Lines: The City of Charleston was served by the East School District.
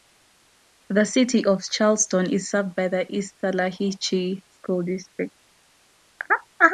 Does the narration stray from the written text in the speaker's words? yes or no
yes